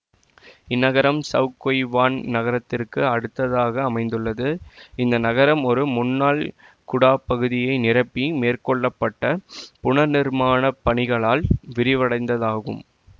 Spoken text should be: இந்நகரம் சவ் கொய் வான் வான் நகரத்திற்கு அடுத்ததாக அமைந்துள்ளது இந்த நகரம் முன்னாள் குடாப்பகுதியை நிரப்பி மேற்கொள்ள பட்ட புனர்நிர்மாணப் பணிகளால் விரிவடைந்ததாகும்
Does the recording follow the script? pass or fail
fail